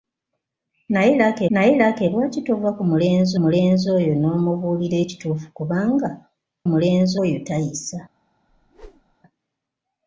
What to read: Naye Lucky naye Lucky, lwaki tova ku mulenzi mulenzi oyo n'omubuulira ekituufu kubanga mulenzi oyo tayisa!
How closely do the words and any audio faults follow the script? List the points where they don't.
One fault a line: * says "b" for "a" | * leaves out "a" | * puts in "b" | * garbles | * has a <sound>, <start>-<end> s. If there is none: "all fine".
* has a whoosh, 8.5-9.2 s